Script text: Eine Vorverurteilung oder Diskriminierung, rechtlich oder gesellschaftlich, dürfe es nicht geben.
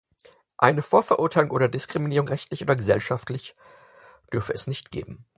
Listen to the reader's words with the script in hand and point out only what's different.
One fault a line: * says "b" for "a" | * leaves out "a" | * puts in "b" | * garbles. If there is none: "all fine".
all fine